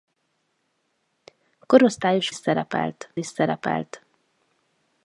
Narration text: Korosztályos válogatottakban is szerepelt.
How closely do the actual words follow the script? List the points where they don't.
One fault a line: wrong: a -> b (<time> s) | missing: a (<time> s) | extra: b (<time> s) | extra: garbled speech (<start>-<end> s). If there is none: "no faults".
wrong: válogatottakban -> szerepelt (2.3 s)